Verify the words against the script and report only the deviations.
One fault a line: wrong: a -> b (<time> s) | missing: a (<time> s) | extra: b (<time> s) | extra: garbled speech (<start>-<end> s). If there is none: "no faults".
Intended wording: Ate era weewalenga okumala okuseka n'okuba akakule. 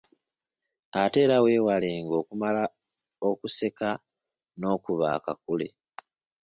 no faults